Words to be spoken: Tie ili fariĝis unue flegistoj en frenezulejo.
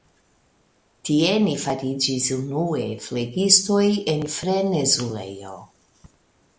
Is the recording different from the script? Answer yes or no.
yes